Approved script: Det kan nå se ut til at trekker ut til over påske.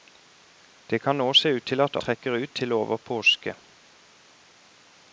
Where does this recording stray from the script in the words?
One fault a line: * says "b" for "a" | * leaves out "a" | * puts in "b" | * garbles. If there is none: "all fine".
all fine